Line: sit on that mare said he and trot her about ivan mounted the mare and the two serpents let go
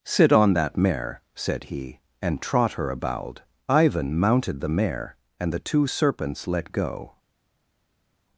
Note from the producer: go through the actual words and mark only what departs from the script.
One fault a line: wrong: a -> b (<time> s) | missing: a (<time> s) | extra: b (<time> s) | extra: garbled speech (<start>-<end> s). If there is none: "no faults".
no faults